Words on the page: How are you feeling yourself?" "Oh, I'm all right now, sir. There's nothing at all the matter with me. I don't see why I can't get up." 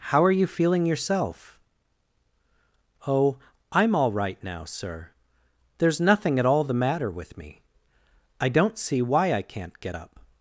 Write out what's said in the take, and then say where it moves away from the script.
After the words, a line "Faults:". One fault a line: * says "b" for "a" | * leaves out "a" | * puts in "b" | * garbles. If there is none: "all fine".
How are you feeling yourself?" "Oh, I'm all right now, sir. There's nothing at all the matter with me. I don't see why I can't get up."
Faults:
all fine